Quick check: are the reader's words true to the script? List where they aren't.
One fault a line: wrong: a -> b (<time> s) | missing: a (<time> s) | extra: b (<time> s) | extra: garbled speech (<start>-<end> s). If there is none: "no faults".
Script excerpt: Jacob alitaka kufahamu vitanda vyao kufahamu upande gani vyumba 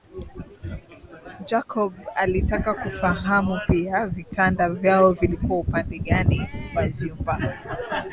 extra: pia (3.7 s)
wrong: kufahamu -> vilikuwa (5.1 s)
extra: wa (6.8 s)